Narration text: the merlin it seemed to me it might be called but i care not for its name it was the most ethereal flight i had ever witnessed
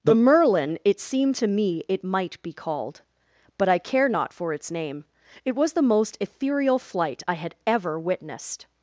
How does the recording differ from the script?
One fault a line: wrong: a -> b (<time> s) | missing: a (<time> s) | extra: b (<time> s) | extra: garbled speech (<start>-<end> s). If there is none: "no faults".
no faults